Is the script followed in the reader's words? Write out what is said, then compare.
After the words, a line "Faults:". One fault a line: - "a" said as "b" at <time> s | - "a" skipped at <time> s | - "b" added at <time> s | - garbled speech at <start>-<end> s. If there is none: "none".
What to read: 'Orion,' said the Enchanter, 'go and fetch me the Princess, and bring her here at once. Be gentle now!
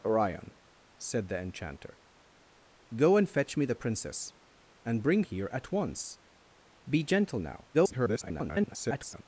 'Orion,' said the Enchanter, 'go and fetch me the Princess, and bring here at once. Be gentle now! [garbled]
Faults:
- "her" skipped at 5.2 s
- garbled speech at 7.7-9.2 s